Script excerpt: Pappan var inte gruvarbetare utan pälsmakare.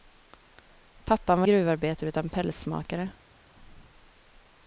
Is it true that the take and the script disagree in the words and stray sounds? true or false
true